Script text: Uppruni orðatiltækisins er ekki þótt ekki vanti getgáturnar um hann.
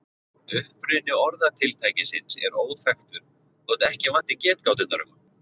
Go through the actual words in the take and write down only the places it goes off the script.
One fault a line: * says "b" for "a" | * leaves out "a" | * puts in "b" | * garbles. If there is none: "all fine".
* says "óþekktur" for "ekki"